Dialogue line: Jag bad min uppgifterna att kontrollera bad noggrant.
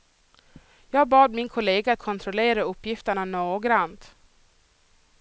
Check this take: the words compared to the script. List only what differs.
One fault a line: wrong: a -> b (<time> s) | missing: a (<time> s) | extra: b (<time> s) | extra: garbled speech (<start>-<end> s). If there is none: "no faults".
wrong: uppgifterna -> kollega (1.5 s)
wrong: bad -> uppgifterna (2.6 s)